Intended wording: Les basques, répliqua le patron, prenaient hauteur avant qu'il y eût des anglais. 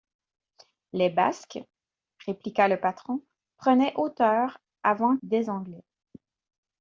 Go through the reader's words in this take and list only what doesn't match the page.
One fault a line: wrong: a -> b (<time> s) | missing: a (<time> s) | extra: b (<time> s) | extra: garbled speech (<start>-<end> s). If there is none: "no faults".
missing: qu'il y eût (5.2 s)